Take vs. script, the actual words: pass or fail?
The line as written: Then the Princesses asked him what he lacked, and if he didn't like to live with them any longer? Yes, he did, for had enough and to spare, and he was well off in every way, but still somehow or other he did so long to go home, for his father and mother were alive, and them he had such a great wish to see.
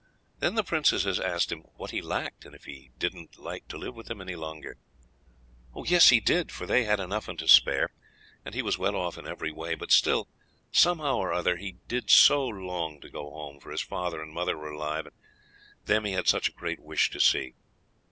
fail